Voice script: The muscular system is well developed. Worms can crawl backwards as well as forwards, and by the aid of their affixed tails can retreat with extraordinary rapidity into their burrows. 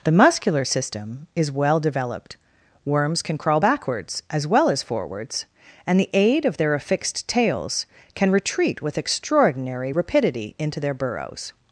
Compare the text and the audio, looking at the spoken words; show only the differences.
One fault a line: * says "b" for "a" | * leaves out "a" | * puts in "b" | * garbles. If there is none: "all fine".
* leaves out "by"